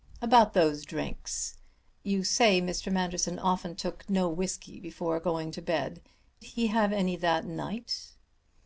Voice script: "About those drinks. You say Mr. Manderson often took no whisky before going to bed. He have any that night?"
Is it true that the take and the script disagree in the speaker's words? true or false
false